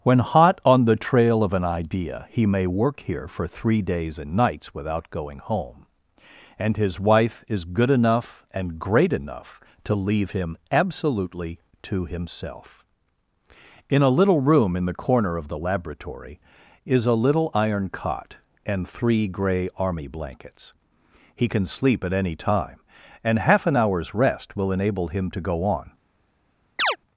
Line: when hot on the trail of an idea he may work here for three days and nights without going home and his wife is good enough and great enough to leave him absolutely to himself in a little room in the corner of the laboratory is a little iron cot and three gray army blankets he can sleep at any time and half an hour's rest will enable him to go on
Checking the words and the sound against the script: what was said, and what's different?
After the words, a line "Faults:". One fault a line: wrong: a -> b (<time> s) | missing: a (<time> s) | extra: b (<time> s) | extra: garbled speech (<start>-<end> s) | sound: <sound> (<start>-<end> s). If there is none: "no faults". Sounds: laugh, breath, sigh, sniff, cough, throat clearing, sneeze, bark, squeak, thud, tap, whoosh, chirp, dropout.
when hot on the trail of an idea he may work here for three days and nights without going home and his wife is good enough and great enough to leave him absolutely to himself in a little room in the corner of the laboratory is a little iron cot and three gray army blankets he can sleep at any time and half an hour's rest will enable him to go on
Faults:
sound: chirp (26.8-27.0 s)